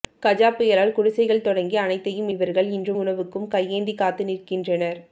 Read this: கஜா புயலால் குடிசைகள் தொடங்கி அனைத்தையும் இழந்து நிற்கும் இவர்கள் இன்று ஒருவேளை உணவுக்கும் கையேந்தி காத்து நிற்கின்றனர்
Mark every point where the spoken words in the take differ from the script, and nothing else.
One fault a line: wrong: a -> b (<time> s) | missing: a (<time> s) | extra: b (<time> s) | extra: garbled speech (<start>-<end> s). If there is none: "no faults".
missing: இழந்து நிற்கும் (2.3 s)
missing: ஒருவேளை (2.9 s)